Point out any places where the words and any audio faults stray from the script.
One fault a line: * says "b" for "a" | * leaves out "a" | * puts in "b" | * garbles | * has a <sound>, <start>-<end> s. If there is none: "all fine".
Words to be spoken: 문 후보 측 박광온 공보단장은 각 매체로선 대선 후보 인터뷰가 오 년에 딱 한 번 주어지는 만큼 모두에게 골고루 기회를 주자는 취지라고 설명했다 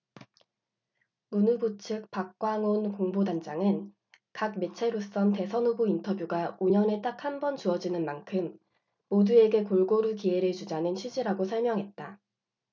all fine